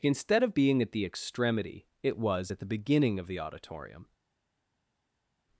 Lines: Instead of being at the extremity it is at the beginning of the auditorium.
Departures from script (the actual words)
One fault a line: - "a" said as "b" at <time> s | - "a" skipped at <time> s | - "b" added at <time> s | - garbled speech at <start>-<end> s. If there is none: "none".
- "is" said as "was" at 2.2 s